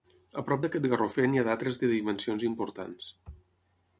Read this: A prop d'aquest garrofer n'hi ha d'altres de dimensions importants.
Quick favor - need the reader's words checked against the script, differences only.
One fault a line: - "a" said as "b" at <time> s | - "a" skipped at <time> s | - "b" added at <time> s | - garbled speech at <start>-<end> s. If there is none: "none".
none